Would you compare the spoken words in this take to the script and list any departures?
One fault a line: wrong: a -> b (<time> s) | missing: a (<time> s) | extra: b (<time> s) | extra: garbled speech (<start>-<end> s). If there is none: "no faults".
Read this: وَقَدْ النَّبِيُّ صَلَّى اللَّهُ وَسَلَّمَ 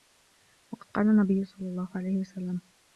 extra: قَالَ (0.9 s)
extra: عَلَيْهِ (1.9 s)